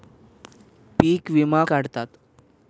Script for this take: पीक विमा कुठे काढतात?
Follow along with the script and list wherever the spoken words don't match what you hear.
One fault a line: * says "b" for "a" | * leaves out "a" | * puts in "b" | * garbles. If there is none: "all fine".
* leaves out "कुठे"